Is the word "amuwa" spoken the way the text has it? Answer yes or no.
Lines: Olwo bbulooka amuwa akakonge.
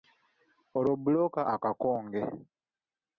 no